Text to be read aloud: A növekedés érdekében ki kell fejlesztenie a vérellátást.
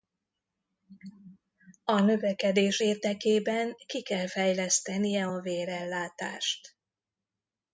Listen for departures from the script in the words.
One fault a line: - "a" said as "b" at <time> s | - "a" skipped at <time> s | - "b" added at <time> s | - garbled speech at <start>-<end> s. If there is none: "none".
none